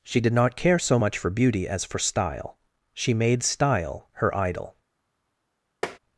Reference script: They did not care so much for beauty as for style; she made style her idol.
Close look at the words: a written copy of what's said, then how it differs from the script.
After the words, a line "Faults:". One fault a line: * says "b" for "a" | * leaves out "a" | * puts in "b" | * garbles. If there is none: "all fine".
She did not care so much for beauty as for style; she made style her idol.
Faults:
* says "She" for "They"